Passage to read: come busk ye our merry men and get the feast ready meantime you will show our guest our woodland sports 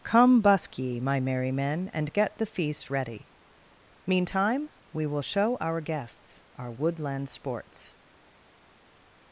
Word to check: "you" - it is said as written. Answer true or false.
false